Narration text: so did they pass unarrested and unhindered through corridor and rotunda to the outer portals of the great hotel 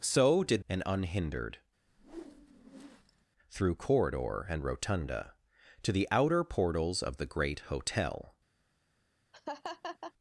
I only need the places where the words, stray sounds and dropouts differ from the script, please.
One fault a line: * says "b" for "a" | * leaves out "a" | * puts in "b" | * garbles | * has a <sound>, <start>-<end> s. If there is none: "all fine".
* leaves out "they pass unarrested"
* has a whoosh, 1.9-3.3 s
* has a laugh, 9.3-10.1 s